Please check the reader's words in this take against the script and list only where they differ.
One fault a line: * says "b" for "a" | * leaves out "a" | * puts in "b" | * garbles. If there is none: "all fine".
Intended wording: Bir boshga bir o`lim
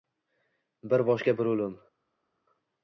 all fine